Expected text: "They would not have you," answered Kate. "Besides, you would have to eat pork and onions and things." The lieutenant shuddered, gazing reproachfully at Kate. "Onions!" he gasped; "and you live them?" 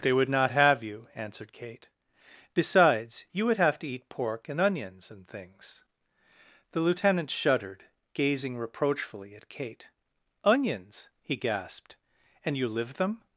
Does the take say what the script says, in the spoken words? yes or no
yes